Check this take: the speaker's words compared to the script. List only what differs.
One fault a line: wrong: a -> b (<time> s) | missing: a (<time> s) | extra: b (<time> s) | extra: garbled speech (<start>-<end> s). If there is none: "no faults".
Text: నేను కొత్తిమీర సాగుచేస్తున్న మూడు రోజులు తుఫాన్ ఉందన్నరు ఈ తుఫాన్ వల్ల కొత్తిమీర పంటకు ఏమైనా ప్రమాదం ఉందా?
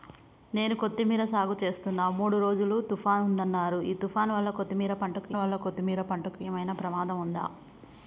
extra: వల్ల కొత్తిమీర పంటకు (5.4 s)